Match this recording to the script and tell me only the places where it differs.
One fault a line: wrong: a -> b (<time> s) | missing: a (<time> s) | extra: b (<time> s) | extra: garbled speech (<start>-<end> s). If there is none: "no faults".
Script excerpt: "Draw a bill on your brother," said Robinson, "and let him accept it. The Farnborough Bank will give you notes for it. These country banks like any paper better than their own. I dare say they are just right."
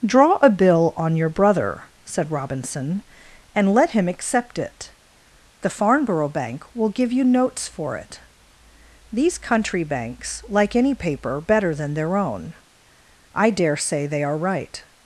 missing: just (14.4 s)